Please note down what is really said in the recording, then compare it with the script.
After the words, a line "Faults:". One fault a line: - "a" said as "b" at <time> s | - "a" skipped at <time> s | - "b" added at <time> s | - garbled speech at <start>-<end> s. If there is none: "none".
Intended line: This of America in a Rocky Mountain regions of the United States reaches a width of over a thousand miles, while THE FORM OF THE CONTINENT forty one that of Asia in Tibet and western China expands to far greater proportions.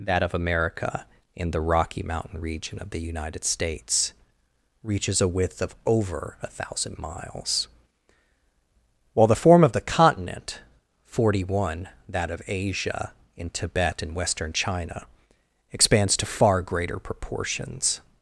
That of America in the Rocky Mountain region of the United States reaches a width of over a thousand miles, while THE FORM OF THE CONTINENT forty one that of Asia in Tibet and western China expands to far greater proportions.
Faults:
- "This" said as "That" at 0.1 s
- "a" said as "the" at 1.5 s
- "regions" said as "region" at 2.4 s